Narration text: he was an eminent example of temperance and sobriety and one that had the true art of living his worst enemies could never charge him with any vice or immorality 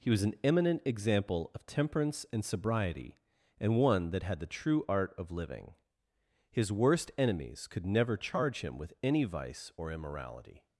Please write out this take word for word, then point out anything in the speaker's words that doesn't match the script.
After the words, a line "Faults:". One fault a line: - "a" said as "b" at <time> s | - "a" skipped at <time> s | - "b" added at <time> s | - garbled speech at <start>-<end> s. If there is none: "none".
he was an eminent example of temperance and sobriety and one that had the true art of living his worst enemies could never charge him with any vice or immorality
Faults:
none